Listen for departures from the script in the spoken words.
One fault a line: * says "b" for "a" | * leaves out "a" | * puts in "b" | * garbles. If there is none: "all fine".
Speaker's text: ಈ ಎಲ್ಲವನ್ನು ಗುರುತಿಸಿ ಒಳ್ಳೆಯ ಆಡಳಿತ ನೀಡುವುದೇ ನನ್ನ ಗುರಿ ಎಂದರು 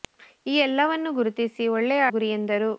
* leaves out "ಆಡಳಿತ ನೀಡುವುದೇ ನನ್ನ"